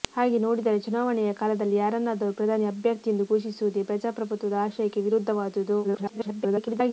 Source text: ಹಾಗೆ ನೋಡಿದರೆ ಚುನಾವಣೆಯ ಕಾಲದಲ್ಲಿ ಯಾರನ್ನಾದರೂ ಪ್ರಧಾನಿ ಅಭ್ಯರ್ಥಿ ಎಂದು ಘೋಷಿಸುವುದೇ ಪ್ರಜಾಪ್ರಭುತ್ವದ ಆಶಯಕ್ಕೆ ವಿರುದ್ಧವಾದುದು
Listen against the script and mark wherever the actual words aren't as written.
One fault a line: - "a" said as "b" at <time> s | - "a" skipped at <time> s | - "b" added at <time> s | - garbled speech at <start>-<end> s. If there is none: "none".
- garbled speech at 5.8-6.9 s